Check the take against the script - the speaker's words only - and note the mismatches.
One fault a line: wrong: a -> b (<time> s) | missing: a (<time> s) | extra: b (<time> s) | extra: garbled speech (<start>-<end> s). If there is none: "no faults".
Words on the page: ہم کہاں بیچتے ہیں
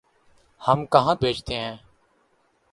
no faults